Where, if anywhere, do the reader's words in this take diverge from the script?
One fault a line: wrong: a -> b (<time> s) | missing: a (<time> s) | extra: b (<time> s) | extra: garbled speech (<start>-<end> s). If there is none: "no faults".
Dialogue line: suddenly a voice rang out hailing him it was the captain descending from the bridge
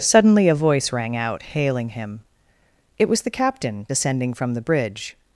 no faults